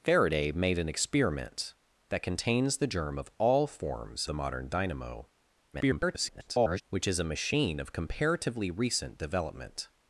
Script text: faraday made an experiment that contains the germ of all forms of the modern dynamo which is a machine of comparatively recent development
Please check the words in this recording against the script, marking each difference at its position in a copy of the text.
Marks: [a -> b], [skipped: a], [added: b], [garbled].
faraday made an experiment that contains the germ of all forms [skipped: of] the modern dynamo [garbled] which is a machine of comparatively recent development